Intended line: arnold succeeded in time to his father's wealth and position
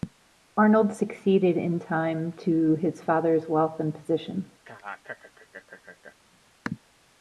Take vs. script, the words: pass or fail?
pass